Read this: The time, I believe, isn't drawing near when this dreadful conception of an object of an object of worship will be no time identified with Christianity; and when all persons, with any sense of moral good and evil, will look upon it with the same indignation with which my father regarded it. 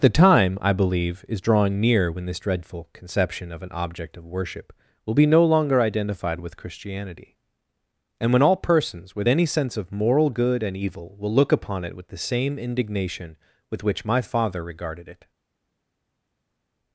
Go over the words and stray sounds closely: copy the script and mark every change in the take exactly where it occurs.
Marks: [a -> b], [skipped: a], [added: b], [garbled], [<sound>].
The time, I believe, [isn't -> is] drawing near when this dreadful conception of an object of [skipped: an object of] worship will be no [time -> longer] identified with Christianity; and when all persons, with any sense of moral good and evil, will look upon it with the same indignation with which my father regarded it.